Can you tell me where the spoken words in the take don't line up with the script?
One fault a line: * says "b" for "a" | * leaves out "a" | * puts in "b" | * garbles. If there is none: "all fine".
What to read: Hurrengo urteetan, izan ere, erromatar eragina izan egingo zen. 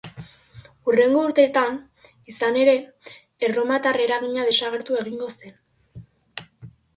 * says "desagertu" for "izan"